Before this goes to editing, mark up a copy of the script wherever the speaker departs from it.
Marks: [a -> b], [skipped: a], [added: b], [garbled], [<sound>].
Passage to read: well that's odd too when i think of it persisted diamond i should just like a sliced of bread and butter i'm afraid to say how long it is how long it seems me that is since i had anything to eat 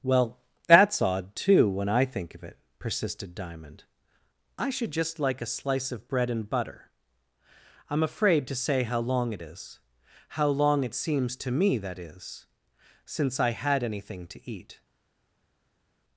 well that's odd too when i think of it persisted diamond i should just like a [sliced -> slice] of bread and butter i'm afraid to say how long it is how long it seems [added: to] me that is since i had anything to eat